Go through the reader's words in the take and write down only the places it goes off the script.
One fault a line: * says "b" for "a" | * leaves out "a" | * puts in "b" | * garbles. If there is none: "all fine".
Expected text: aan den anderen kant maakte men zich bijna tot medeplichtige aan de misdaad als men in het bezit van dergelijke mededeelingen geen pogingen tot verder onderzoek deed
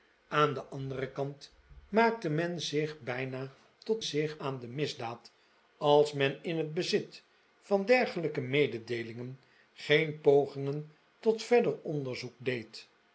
* says "zich" for "medeplichtige"